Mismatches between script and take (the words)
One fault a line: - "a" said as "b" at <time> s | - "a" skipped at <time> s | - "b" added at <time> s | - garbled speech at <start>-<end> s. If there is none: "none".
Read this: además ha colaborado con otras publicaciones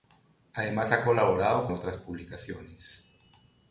- "con" skipped at 1.7 s